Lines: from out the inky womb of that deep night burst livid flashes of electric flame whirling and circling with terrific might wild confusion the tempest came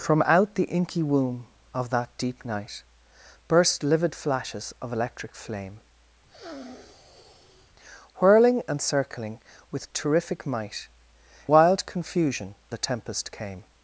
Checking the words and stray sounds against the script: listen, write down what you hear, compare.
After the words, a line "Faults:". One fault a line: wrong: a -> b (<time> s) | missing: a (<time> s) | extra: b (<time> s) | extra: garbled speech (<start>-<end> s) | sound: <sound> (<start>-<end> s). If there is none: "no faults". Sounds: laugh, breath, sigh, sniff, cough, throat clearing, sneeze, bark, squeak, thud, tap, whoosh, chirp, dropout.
from out the inky womb of that deep night burst livid flashes of electric flame whirling and circling with terrific might wild confusion the tempest came
Faults:
sound: sniff (6.3-7.7 s)